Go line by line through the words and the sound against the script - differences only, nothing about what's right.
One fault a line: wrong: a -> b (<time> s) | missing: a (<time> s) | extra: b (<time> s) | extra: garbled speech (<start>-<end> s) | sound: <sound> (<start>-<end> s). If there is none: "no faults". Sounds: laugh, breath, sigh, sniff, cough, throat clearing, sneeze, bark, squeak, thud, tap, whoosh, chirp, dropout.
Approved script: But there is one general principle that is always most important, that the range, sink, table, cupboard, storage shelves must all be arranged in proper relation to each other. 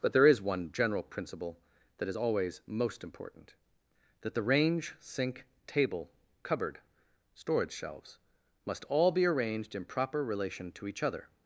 no faults